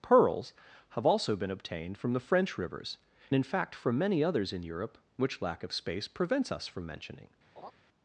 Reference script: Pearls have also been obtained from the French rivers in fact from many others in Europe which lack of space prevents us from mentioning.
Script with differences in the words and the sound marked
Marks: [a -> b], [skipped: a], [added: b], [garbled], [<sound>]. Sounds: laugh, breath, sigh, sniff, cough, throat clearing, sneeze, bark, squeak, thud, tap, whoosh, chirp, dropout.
Pearls have also been obtained from the French rivers in fact from many others in Europe which lack of space prevents us from mentioning. [laugh]